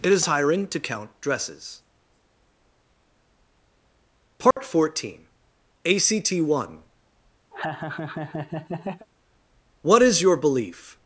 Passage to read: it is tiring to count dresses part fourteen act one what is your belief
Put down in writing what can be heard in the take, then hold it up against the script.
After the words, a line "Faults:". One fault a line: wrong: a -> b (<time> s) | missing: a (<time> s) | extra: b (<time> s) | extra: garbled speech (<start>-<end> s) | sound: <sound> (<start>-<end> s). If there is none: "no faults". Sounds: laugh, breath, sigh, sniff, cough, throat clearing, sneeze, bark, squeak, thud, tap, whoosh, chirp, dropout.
it is tiring to count dresses part fourteen act one what is your belief
Faults:
sound: dropout (4.5-4.6 s)
sound: laugh (7.5-9.1 s)